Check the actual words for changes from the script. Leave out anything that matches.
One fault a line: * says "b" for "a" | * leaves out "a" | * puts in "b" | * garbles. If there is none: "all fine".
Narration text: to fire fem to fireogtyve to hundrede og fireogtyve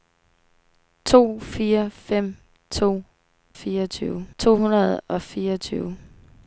all fine